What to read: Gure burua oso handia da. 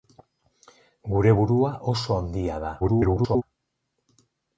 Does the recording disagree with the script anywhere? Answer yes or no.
yes